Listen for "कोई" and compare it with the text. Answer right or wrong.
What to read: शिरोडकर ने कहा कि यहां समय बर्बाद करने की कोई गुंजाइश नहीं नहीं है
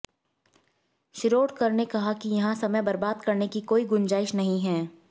right